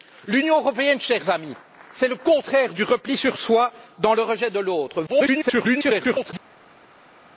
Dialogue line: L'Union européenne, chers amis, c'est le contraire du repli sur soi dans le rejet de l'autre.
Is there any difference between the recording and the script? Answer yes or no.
yes